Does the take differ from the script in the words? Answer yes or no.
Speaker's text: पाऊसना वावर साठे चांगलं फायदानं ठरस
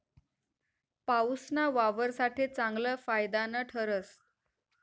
no